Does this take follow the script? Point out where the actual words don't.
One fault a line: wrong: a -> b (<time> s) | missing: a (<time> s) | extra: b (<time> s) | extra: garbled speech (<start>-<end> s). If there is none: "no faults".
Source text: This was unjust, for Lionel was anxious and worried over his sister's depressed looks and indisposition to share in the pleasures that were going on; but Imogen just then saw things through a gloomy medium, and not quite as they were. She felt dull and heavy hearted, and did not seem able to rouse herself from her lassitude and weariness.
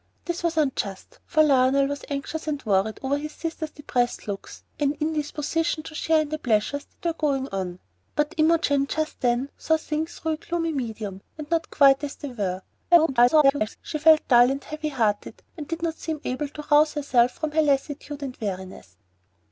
extra: garbled speech (12.9-13.8 s)